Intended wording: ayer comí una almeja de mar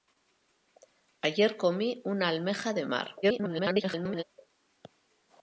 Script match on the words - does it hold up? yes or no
no